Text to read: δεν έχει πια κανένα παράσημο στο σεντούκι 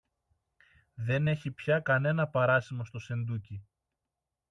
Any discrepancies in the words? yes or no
no